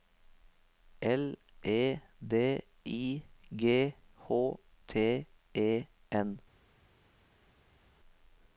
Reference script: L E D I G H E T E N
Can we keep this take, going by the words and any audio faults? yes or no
no